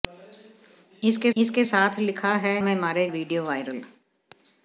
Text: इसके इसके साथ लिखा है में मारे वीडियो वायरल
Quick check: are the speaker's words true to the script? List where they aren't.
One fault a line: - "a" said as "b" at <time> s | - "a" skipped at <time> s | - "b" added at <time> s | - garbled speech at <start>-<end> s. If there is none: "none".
none